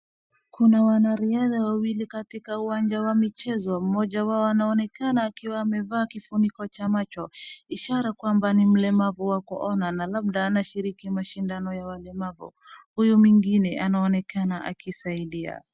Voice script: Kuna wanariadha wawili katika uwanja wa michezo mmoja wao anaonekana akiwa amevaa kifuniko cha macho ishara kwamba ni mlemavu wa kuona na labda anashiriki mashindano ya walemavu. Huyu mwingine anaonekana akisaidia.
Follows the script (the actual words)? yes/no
yes